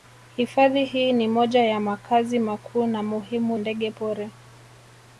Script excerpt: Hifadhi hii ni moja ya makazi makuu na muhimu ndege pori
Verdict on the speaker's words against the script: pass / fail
pass